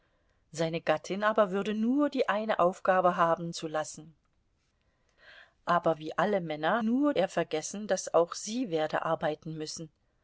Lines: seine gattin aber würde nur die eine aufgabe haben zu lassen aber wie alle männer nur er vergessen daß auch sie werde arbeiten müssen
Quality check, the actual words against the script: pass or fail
pass